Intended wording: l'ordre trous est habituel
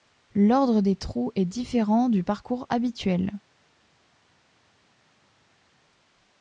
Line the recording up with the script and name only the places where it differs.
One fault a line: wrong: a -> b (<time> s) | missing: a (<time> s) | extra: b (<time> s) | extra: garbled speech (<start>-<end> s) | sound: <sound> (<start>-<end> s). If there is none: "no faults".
extra: des (0.8 s)
extra: différent du parcours (1.4 s)